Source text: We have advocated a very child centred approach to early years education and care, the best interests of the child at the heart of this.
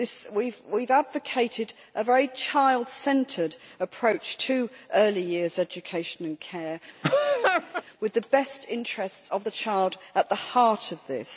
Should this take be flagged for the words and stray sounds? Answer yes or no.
yes